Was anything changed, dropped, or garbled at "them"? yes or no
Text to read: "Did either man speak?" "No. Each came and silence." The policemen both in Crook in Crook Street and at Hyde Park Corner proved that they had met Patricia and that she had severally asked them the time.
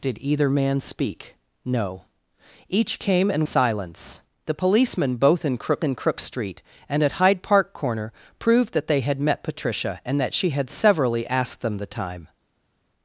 no